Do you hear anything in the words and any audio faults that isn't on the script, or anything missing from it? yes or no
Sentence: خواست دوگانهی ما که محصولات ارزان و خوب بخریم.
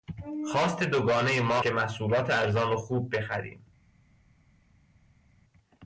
no